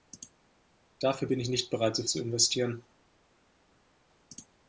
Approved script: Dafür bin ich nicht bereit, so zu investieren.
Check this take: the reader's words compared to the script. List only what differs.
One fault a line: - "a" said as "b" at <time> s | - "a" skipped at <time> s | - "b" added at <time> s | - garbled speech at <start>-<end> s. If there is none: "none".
none